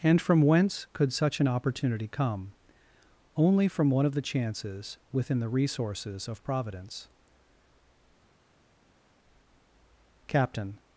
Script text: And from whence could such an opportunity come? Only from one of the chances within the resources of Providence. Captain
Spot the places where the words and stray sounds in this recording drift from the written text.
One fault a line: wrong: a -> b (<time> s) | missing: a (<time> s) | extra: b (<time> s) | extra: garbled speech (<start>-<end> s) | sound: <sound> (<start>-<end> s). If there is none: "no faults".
no faults